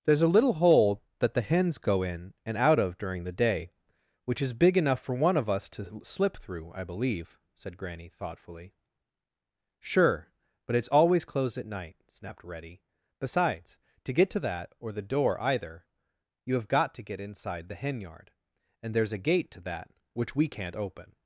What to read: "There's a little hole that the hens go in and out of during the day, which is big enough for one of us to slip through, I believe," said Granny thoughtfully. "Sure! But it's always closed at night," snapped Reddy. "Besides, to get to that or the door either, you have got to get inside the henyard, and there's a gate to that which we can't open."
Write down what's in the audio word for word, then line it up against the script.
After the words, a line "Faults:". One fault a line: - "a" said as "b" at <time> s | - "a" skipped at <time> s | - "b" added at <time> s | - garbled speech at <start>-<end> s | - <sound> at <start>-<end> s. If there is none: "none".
"There's a little hole that the hens go in and out of during the day, which is big enough for one of us to slip through, I believe," said Granny thoughtfully. "Sure! But it's always closed at night," snapped Reddy. "Besides, to get to that or the door either, you have got to get inside the henyard, and there's a gate to that which we can't open."
Faults:
none